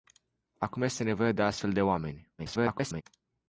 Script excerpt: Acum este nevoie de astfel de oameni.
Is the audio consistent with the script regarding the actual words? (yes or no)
no